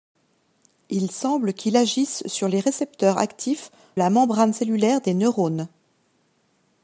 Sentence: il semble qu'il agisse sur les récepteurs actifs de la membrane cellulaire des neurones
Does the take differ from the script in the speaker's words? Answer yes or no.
yes